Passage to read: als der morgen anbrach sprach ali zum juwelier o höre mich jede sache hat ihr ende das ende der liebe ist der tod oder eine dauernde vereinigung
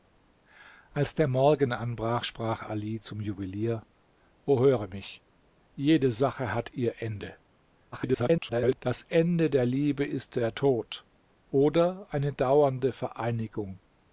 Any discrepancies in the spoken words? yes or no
yes